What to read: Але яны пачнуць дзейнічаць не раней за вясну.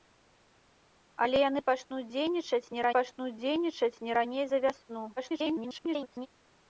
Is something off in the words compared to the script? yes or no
yes